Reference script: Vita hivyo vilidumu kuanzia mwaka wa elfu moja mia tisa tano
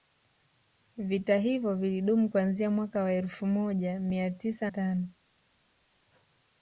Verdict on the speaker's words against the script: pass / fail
pass